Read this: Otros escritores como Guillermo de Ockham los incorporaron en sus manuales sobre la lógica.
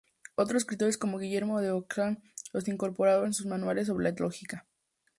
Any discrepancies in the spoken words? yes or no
no